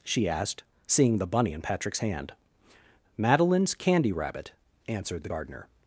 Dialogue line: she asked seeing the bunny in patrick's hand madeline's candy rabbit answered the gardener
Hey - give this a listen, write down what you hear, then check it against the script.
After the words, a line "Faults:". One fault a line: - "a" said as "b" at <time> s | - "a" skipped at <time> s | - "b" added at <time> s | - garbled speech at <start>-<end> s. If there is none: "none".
she asked seeing the bunny in patrick's hand madeline's candy rabbit answered the gardener
Faults:
none